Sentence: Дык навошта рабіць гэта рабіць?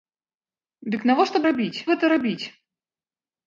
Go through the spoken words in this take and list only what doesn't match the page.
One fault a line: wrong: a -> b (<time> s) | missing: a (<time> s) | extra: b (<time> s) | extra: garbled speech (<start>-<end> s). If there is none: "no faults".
no faults